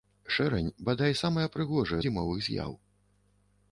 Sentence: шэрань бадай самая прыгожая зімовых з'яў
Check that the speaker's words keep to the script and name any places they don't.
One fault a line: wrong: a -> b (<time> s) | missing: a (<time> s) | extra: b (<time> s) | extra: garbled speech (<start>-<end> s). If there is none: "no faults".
no faults